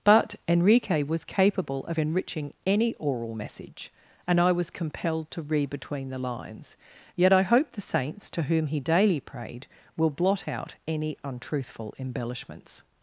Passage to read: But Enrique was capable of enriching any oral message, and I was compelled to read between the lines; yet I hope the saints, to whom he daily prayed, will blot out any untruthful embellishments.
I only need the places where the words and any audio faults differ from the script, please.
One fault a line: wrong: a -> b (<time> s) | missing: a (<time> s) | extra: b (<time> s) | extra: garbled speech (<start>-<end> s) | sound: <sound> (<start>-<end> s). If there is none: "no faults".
no faults